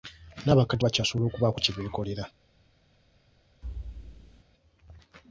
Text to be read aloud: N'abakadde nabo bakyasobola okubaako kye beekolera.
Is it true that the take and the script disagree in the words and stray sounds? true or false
true